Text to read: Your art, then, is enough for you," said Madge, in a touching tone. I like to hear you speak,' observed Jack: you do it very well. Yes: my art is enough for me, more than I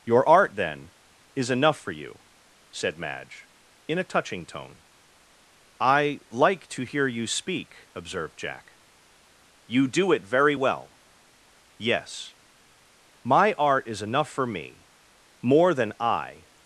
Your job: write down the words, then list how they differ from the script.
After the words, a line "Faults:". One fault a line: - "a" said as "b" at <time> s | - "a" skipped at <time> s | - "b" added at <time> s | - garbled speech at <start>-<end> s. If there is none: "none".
Your art, then, is enough for you," said Madge, in a touching tone. I like to hear you speak,' observed Jack: you do it very well. Yes: my art is enough for me, more than I
Faults:
none